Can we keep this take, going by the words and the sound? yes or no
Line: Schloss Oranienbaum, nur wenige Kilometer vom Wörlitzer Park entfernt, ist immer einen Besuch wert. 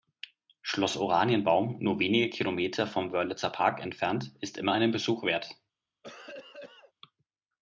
no